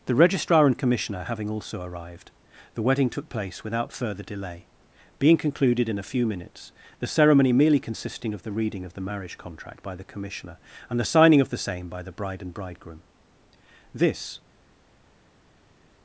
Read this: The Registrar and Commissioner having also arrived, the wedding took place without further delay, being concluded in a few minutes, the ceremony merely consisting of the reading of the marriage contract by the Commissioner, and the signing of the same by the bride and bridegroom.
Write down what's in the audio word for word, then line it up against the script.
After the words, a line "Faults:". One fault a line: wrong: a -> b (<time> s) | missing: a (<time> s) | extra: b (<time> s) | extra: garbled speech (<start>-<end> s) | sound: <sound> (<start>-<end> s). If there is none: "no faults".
The Registrar and Commissioner having also arrived, the wedding took place without further delay, being concluded in a few minutes, the ceremony merely consisting of the reading of the marriage contract by the Commissioner, and the signing of the same by the bride and bridegroom. This
Faults:
extra: This (13.9 s)